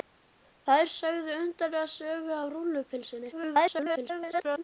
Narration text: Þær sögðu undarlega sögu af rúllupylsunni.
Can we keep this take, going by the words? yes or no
no